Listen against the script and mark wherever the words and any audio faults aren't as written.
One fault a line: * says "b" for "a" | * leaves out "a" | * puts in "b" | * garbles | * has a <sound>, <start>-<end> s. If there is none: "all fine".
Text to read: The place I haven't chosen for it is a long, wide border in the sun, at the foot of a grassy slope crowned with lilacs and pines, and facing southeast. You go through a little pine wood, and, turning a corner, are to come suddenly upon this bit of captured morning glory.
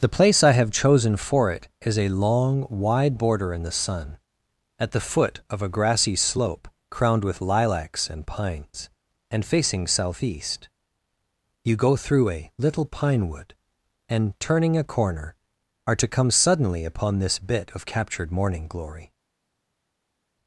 * says "have" for "haven't"